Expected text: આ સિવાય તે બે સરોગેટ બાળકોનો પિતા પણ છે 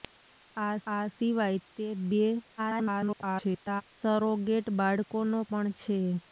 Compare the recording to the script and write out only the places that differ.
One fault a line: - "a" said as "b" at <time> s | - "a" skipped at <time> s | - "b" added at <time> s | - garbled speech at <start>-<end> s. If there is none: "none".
- "આ" added at 0.9 s
- garbled speech at 2.6-3.8 s
- "પિતા" skipped at 5.4 s